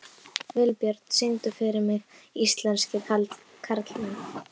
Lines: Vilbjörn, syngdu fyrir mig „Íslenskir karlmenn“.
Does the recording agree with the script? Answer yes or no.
yes